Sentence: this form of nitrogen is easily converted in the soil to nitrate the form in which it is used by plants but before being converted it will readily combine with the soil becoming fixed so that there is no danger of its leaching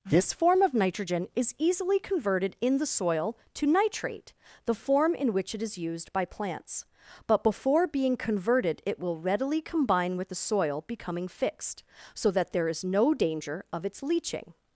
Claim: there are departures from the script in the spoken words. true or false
false